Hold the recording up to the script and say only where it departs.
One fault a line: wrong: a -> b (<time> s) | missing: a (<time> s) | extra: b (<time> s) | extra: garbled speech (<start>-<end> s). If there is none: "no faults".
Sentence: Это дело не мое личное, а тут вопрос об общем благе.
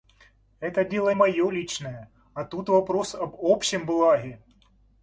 missing: не (1.1 s)